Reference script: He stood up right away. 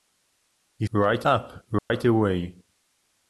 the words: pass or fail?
fail